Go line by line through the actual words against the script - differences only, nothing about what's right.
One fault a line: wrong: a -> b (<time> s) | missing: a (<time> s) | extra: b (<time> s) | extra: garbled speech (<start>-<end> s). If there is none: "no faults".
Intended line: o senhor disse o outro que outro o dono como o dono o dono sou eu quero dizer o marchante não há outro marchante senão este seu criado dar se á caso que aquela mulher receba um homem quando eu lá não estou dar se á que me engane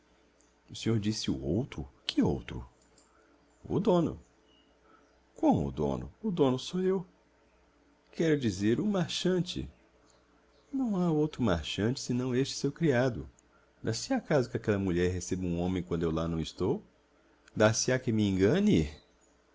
no faults